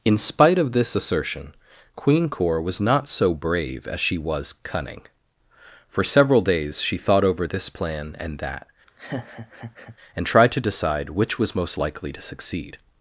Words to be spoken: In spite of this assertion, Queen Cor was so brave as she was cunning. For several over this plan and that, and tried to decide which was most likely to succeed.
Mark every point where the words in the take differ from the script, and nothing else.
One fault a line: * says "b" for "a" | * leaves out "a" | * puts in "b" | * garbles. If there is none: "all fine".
* puts in "not"
* puts in "days she thought"